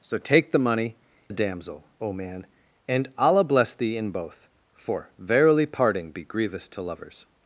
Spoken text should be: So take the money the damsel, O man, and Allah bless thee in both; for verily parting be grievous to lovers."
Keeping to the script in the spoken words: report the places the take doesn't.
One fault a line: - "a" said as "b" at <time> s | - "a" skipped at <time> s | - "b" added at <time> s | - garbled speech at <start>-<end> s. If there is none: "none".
none